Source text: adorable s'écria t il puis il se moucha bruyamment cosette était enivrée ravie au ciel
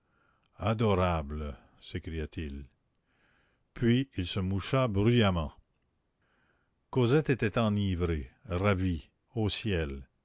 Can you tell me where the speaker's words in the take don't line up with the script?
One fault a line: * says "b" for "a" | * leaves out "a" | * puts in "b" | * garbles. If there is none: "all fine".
all fine